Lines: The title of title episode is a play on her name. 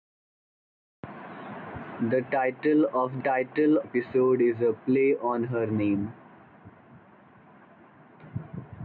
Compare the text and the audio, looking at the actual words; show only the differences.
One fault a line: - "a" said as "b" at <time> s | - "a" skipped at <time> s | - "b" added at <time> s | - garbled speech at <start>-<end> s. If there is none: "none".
none